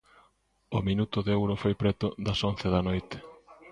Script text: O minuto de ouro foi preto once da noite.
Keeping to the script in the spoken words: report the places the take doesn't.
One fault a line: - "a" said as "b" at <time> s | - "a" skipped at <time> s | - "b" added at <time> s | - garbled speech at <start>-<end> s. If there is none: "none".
- "das" added at 2.3 s